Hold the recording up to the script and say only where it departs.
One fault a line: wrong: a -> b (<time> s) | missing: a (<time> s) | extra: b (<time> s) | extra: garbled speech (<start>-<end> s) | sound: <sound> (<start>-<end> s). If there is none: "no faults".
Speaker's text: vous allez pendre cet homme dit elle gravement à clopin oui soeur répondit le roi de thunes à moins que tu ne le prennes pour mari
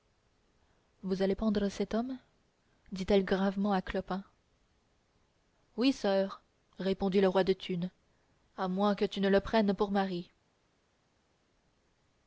no faults